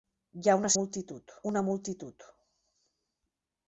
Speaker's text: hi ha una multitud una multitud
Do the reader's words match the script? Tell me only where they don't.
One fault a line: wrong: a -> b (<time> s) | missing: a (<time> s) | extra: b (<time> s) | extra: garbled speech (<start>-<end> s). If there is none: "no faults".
no faults